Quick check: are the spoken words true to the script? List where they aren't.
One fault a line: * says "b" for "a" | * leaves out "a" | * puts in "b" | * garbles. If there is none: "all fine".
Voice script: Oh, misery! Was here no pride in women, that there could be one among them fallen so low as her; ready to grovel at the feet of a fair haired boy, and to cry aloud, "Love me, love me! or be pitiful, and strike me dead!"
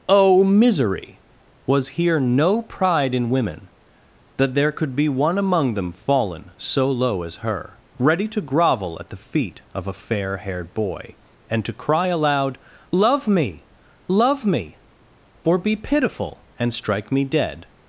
all fine